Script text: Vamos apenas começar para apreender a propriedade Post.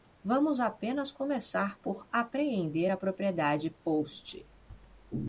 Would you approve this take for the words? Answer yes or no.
no